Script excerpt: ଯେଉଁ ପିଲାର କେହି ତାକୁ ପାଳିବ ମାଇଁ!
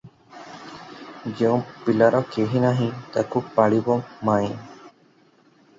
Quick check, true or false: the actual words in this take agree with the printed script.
false